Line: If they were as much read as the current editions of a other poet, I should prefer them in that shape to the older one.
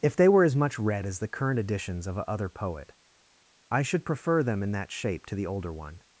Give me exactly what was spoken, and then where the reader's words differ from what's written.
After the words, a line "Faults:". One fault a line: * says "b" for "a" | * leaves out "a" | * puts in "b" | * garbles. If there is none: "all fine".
If they were as much read as the current editions of a other poet, I should prefer them in that shape to the older one.
Faults:
all fine